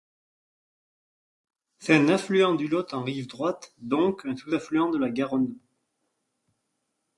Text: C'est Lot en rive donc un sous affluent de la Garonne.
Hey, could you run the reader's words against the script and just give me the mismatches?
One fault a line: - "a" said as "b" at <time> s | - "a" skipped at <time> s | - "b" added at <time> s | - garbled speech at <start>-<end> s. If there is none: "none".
- "un affluent du" added at 1.9 s
- "droite" added at 3.3 s